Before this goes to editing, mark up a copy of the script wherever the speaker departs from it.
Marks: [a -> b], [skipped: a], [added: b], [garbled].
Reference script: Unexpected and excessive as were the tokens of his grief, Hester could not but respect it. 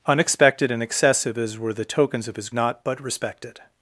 Unexpected and excessive as were the tokens of his [skipped: grief, Hester could] not but respect it.